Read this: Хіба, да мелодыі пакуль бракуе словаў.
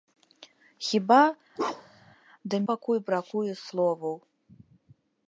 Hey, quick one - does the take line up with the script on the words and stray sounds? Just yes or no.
no